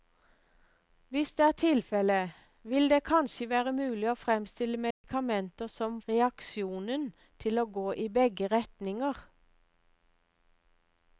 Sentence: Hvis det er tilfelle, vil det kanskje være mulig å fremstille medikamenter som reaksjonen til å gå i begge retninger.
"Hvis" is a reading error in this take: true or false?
false